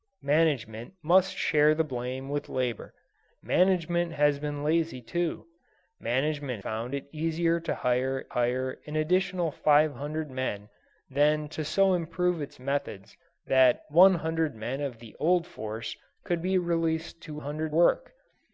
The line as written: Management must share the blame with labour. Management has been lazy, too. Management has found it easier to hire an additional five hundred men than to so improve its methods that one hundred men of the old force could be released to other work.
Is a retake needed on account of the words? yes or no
yes